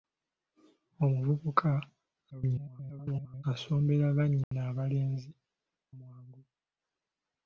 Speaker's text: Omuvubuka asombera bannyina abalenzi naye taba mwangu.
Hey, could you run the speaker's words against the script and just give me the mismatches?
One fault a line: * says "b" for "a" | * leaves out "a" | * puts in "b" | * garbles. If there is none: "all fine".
* garbles
* leaves out "naye taba"